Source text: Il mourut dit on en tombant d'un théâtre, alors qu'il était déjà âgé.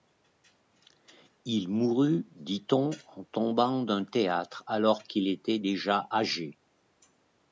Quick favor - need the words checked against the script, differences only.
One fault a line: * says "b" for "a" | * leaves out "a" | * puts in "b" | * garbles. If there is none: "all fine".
all fine